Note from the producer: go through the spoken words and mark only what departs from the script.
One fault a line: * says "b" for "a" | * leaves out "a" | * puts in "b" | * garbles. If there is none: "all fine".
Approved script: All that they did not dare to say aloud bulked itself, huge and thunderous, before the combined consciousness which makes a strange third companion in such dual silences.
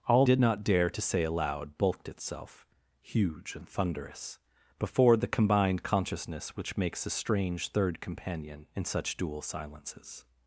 * leaves out "that they"